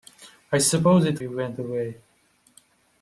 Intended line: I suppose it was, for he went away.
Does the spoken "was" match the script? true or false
false